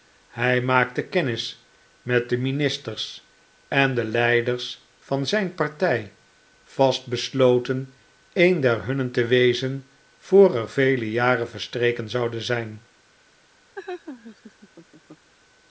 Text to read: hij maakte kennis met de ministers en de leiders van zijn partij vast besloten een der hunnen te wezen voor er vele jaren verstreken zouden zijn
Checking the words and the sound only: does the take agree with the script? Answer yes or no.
no